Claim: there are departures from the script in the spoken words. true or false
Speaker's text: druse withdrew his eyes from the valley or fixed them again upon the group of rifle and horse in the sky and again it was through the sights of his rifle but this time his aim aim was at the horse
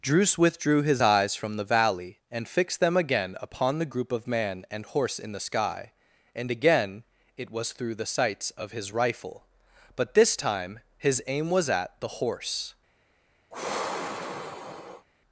true